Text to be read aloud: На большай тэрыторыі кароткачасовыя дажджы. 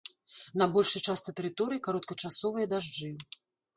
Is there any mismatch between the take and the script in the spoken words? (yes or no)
yes